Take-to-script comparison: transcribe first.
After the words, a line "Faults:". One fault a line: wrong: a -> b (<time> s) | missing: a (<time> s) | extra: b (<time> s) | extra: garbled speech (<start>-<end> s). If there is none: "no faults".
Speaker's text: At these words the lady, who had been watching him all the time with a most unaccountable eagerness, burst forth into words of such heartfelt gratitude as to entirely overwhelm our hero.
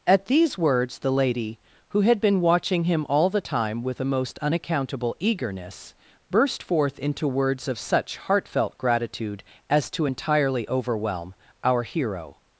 At these words the lady, who had been watching him all the time with a most unaccountable eagerness, burst forth into words of such heartfelt gratitude as to entirely overwhelm our hero.
Faults:
no faults